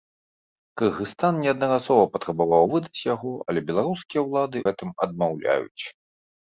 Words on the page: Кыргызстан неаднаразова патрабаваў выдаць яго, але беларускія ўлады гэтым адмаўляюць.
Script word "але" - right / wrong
right